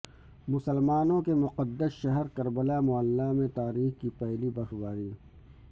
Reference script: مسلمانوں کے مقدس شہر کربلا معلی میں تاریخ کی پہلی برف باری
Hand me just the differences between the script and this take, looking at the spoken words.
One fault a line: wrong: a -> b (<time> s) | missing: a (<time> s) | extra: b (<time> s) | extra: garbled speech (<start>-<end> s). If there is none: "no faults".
no faults